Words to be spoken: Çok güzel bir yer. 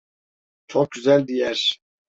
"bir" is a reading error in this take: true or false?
true